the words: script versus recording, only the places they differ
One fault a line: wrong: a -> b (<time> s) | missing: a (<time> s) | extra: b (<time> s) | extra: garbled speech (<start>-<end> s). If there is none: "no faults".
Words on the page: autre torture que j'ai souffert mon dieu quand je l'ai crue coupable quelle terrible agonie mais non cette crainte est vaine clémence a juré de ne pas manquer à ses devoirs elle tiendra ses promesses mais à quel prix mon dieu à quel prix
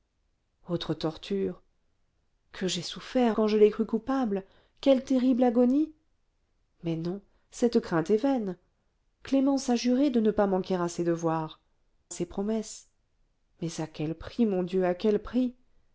missing: mon dieu (3.4 s)
missing: elle tiendra (11.6 s)